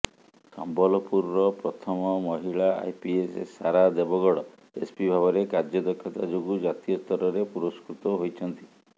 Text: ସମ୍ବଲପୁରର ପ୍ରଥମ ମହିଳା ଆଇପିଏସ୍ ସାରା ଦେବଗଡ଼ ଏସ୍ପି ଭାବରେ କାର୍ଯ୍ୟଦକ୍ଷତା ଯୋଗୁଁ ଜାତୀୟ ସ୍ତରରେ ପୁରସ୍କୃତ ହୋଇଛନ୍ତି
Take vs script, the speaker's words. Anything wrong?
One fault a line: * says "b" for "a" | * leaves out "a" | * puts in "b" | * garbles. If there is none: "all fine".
all fine